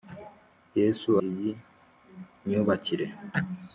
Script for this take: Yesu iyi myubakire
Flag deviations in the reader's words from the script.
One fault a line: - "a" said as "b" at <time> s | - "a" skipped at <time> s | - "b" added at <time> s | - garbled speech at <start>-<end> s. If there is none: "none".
none